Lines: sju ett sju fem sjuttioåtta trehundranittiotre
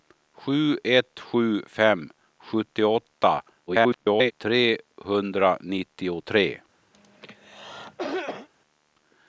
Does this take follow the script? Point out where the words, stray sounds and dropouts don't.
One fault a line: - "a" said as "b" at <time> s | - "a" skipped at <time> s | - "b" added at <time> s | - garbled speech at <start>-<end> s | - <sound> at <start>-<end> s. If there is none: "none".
- garbled speech at 3.7-4.3 s
- cough at 6.9-8.5 s